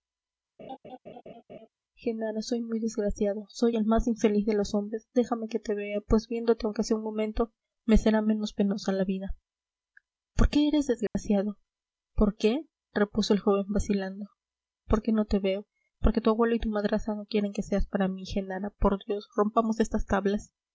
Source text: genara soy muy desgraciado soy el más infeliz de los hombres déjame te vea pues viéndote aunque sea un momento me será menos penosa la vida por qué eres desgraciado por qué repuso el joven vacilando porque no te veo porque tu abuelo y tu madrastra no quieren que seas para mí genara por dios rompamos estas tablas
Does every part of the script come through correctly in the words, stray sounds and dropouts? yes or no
no